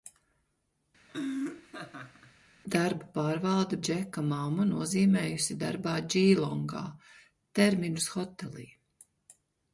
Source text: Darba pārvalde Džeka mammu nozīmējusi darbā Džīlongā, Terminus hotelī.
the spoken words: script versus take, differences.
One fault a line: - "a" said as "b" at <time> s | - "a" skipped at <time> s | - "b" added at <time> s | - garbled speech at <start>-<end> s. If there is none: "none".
none